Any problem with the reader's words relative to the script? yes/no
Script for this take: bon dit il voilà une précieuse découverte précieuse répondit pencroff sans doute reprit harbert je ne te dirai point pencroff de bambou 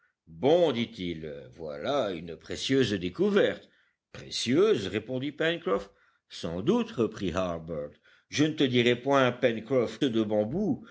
no